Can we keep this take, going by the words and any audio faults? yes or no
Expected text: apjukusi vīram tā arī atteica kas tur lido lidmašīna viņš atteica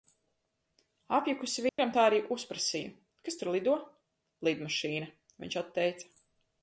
no